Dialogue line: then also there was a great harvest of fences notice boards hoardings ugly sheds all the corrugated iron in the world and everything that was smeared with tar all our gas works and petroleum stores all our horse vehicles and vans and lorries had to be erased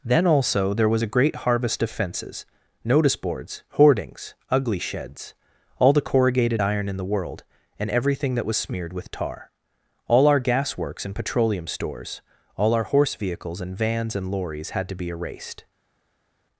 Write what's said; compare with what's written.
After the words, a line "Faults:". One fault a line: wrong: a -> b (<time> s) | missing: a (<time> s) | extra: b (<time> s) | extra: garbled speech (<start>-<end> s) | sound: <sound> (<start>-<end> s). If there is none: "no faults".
then also there was a great harvest of fences notice boards hoardings ugly sheds all the corrugated iron in the world and everything that was smeared with tar all our gas works and petroleum stores all our horse vehicles and vans and lorries had to be erased
Faults:
no faults